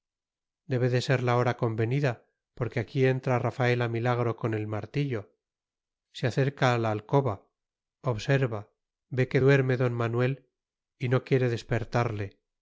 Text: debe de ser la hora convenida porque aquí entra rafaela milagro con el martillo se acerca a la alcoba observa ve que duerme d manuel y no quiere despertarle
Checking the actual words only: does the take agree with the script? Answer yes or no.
yes